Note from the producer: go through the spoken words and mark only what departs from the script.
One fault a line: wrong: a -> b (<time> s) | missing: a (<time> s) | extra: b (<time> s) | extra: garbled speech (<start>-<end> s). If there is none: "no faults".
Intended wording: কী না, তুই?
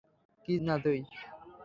no faults